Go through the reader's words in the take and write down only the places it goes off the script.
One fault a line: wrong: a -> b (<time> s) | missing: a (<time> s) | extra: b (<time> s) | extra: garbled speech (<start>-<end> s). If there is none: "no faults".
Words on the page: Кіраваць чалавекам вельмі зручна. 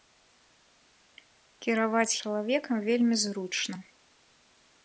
no faults